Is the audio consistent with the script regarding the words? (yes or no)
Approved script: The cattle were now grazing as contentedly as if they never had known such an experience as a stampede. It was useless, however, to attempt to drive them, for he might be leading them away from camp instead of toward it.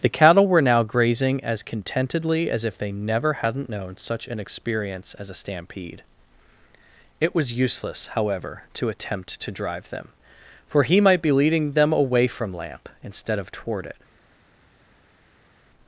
no